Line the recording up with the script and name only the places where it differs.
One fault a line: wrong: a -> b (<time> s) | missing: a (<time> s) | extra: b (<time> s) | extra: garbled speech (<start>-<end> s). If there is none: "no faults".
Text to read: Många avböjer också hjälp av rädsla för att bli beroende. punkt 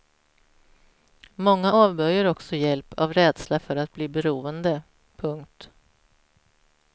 no faults